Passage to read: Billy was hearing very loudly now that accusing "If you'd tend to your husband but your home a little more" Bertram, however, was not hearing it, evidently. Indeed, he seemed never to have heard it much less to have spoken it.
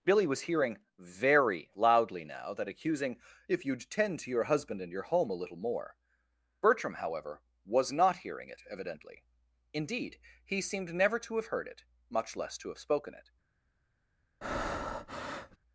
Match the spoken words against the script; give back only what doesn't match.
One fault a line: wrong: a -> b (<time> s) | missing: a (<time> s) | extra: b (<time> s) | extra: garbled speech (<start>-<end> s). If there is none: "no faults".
wrong: but -> and (4.8 s)